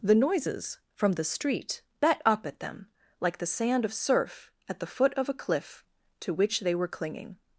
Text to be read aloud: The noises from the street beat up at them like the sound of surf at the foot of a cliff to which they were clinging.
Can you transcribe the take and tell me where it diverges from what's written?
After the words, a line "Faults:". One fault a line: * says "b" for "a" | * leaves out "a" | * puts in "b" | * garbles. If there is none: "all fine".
The noises from the street bet up at them like the sand of surf at the foot of a cliff to which they were clinging.
Faults:
* says "bet" for "beat"
* says "sand" for "sound"